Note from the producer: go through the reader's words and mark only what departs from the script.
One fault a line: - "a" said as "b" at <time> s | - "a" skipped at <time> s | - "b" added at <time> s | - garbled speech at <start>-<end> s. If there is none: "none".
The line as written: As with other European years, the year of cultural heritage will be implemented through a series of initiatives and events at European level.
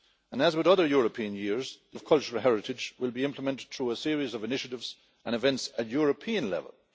- "year" skipped at 2.0 s